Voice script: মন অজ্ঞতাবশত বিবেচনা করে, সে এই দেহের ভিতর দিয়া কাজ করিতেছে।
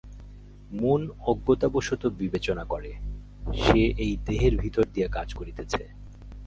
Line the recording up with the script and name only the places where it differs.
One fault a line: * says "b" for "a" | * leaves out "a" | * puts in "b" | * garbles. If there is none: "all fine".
all fine